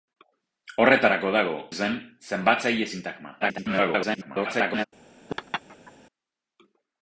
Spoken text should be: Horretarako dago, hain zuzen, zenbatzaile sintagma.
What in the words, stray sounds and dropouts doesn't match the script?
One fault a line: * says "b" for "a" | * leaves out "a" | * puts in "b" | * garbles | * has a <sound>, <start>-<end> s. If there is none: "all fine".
* leaves out "hain"
* garbles
* has a laugh, 5.3-5.9 s